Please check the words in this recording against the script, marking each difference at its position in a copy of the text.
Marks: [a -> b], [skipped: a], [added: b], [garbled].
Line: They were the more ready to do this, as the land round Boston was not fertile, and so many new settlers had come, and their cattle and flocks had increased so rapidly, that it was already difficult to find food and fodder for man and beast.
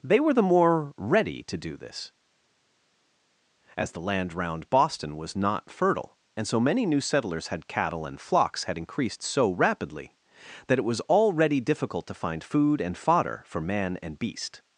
They were the more ready to do this, as the land round Boston was not fertile, and so many new settlers had [skipped: come, and their] cattle and flocks had increased so rapidly, that it was already difficult to find food and fodder for man and beast.